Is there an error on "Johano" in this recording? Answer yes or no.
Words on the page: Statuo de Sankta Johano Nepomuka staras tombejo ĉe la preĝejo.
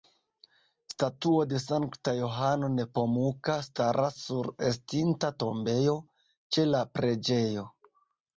no